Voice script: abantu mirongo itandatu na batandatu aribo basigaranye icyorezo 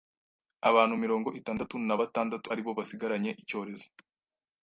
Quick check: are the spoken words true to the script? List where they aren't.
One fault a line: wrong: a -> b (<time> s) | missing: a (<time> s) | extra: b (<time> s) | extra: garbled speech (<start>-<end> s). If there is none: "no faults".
no faults